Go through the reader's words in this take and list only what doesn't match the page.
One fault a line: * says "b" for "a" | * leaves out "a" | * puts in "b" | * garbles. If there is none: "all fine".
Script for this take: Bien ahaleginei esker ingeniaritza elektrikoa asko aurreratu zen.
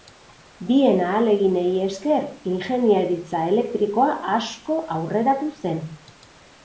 all fine